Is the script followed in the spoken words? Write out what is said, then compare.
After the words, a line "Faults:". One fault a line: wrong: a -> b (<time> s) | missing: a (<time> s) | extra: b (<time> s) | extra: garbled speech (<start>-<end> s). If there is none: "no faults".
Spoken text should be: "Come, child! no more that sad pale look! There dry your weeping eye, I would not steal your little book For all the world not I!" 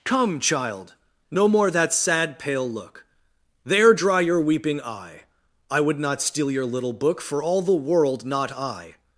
"Come, child! no more that sad pale look! There dry your weeping eye, I would not steal your little book For all the world not I!"
Faults:
no faults